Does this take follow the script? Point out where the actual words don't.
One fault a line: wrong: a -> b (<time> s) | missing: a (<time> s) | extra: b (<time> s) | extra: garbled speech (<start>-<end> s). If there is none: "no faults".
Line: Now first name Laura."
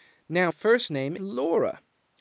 no faults